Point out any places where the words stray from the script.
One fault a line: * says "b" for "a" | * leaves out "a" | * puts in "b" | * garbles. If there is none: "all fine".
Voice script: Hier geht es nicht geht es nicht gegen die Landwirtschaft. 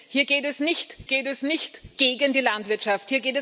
all fine